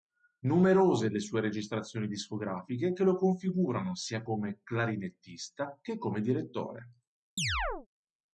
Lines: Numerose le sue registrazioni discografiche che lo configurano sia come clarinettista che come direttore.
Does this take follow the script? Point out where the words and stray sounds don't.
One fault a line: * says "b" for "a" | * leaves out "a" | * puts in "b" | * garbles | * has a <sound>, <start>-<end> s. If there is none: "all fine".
* has a chirp, 7.4-7.9 s